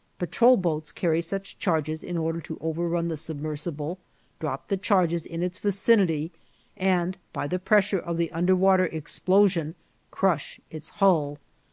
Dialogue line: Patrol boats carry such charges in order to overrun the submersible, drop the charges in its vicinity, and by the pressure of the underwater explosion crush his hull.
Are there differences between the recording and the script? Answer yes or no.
yes